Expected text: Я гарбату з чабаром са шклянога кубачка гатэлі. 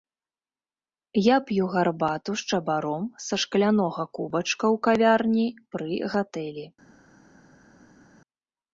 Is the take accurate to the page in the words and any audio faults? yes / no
no